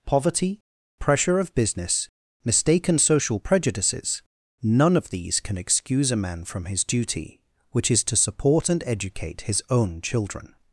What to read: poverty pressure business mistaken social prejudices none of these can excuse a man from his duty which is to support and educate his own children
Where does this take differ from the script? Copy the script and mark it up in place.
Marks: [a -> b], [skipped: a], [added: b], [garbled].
poverty pressure [added: of] business mistaken social prejudices none of these can excuse a man from his duty which is to support and educate his own children